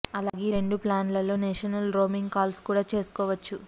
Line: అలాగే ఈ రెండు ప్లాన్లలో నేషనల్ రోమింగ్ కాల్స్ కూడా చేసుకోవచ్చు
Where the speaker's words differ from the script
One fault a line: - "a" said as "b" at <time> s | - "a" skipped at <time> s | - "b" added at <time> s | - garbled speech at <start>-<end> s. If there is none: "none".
none